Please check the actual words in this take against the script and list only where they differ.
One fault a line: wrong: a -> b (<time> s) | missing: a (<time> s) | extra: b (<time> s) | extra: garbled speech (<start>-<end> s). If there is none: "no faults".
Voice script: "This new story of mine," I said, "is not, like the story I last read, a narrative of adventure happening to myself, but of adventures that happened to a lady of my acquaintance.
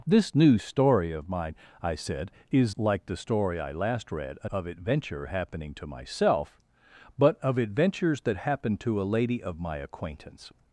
missing: not (2.8 s)
missing: narrative (4.5 s)